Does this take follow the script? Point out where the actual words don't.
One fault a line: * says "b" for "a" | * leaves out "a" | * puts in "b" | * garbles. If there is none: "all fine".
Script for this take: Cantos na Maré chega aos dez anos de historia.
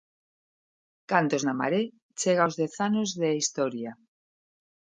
all fine